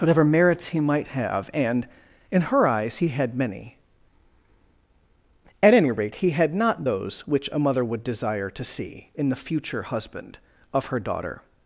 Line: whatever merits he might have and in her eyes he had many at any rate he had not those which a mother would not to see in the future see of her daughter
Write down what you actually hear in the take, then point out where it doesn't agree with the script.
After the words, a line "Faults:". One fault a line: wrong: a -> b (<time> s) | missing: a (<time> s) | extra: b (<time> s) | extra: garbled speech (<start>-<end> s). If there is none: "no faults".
whatever merits he might have and in her eyes he had many at any rate he had not those which a mother would desire to see in the future husband of her daughter
Faults:
wrong: not -> desire (8.0 s)
wrong: see -> husband (9.8 s)